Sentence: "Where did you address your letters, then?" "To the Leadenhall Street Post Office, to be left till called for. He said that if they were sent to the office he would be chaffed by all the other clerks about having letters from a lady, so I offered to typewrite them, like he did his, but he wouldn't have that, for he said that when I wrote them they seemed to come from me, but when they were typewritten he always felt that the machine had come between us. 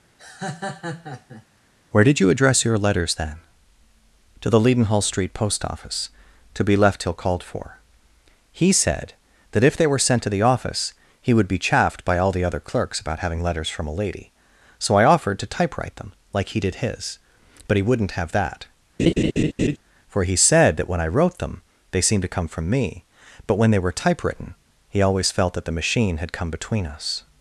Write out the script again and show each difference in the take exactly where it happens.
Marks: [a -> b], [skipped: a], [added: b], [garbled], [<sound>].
[laugh] "Where did you address your letters, then?" "To the Leadenhall Street Post Office, to be left till called for. He said that if they were sent to the office he would be chaffed by all the other clerks about having letters from a lady, so I offered to typewrite them, like he did his, but he wouldn't have that, [laugh] for he said that when I wrote them they seemed to come from me, but when they were typewritten he always felt that the machine had come between us.